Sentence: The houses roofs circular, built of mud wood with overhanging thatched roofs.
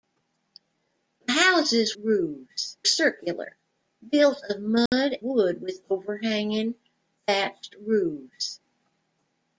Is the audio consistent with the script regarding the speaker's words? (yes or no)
yes